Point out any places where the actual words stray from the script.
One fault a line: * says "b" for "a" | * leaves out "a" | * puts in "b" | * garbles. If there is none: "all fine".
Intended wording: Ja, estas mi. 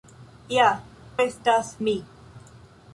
all fine